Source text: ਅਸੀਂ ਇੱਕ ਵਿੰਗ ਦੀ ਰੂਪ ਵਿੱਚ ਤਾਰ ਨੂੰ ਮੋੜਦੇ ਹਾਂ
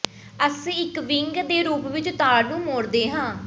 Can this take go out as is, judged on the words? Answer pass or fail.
fail